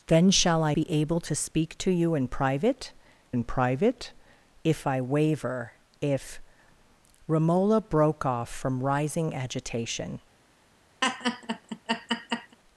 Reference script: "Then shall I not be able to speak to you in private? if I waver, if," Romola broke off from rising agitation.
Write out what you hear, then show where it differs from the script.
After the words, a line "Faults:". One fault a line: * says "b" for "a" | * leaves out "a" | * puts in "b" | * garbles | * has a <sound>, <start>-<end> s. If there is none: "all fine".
"Then shall I be able to speak to you in private in private? if I waver, if," Romola broke off from rising agitation.
Faults:
* leaves out "not"
* puts in "in private"
* has a laugh, 11.0-12.6 s